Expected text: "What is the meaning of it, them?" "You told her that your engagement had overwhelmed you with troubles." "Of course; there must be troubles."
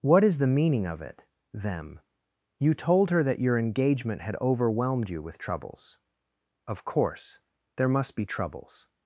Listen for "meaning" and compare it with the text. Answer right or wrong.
right